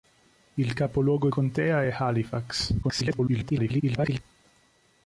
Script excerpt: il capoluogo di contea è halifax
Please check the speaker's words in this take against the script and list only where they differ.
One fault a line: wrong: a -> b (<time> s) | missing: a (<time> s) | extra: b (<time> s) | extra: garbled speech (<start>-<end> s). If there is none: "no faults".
missing: di (1.3 s)
extra: garbled speech (2.8-4.2 s)